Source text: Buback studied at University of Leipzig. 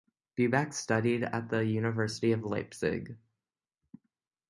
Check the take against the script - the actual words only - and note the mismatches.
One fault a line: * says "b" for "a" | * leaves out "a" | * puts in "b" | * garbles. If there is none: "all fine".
* puts in "the"